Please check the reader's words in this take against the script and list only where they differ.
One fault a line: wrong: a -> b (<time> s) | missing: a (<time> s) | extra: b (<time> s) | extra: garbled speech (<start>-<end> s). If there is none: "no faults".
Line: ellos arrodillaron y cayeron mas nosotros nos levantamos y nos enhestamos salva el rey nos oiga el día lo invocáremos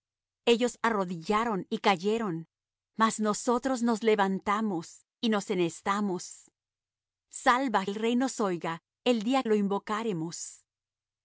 no faults